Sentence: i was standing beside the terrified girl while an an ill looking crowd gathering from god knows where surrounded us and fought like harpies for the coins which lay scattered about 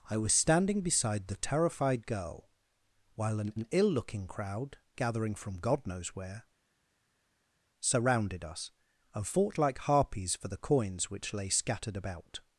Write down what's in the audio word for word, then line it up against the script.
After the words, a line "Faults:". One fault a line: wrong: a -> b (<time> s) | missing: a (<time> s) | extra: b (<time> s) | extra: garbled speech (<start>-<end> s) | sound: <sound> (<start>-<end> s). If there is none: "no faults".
i was standing beside the terrified girl while an an ill looking crowd gathering from god knows where surrounded us and fought like harpies for the coins which lay scattered about
Faults:
no faults